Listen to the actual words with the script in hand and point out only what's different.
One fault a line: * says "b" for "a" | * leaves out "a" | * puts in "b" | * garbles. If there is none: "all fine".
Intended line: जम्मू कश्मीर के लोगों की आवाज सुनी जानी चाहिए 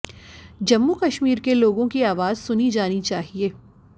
all fine